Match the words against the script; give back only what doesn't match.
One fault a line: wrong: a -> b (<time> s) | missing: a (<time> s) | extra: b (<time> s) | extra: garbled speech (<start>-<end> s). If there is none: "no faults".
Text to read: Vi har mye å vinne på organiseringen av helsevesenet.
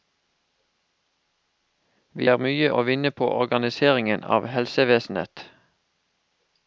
no faults